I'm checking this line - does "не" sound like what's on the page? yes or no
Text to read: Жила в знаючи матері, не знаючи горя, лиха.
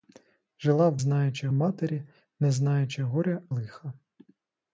yes